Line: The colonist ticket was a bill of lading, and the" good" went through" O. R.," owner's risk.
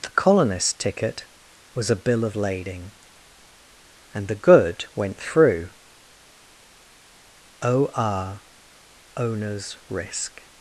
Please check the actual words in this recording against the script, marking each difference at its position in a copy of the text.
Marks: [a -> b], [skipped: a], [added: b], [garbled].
The colonist ticket was a bill of lading, and the" good" went through" O. R.," owner's risk.